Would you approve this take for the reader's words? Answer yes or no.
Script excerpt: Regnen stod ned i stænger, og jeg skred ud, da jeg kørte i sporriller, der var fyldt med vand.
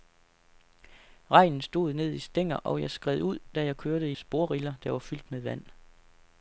yes